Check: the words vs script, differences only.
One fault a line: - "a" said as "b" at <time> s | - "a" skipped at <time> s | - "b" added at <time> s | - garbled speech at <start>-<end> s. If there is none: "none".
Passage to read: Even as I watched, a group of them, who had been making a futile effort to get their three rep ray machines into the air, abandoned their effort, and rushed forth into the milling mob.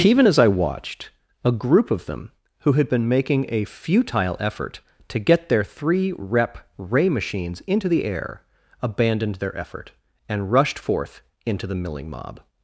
none